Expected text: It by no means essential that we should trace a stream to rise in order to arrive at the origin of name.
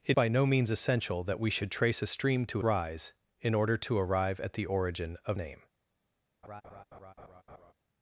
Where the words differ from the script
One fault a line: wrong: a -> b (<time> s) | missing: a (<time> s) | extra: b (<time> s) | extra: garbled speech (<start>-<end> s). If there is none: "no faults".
no faults